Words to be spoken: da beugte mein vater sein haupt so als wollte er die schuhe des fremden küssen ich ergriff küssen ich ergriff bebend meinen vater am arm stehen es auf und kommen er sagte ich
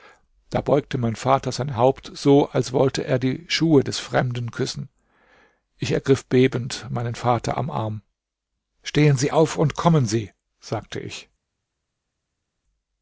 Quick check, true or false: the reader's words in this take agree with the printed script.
false